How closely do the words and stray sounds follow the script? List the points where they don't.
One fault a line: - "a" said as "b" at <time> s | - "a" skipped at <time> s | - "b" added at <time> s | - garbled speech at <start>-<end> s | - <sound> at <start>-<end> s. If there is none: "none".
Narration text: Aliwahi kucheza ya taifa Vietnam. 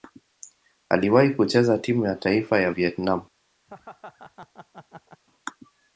- "timu" added at 1.8 s
- "ya" added at 2.6 s
- laugh at 3.7-5.2 s